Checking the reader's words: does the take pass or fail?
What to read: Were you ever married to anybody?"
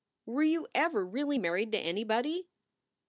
fail